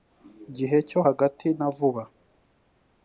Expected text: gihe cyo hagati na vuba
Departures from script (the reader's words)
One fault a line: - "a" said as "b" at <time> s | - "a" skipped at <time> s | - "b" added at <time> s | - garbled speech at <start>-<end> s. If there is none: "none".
none